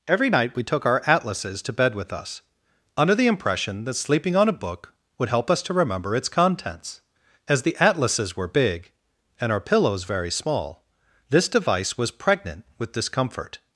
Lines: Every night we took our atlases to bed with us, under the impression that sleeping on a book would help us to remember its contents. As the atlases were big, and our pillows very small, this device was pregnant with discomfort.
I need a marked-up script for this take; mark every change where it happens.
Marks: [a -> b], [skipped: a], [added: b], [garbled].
Every night we took our atlases to bed with us, under the impression that sleeping on a book would help us to remember its contents. As the atlases were big, and our pillows very small, this device was pregnant with discomfort.